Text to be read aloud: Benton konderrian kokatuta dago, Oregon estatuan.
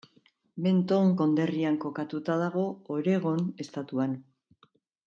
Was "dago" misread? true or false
false